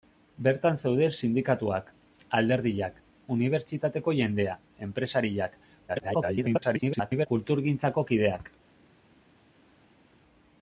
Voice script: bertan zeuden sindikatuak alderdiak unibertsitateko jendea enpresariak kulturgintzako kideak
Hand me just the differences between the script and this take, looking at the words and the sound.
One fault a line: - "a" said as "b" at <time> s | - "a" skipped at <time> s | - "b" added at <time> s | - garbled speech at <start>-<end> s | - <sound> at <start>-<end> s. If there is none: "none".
- garbled speech at 5.9-7.3 s